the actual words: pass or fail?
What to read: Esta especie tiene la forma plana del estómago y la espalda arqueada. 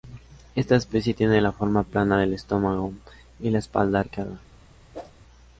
pass